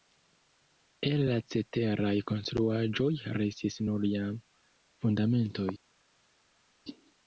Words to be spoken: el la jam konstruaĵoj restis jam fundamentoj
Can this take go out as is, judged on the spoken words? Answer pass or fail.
fail